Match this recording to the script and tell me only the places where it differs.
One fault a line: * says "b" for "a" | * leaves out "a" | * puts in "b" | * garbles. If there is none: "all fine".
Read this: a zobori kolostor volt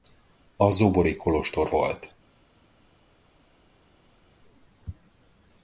all fine